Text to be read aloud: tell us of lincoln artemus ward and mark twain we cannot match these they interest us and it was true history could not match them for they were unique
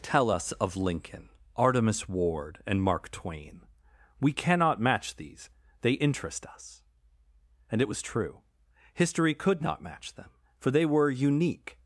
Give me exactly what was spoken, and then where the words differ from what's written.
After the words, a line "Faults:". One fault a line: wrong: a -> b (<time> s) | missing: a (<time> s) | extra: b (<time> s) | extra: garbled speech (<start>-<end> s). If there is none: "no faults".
tell us of lincoln artemus ward and mark twain we cannot match these they interest us and it was true history could not match them for they were unique
Faults:
no faults